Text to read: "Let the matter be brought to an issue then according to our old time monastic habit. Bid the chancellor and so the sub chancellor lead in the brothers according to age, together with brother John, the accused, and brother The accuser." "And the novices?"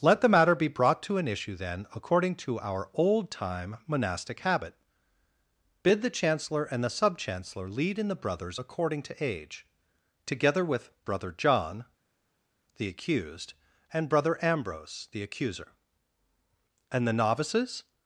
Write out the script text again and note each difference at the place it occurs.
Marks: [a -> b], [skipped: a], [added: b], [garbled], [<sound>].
"Let the matter be brought to an issue then according to our old time monastic habit. Bid the chancellor and [skipped: so] the sub chancellor lead in the brothers according to age, together with brother John, the accused, and brother [added: Ambrose] The accuser." "And the novices?"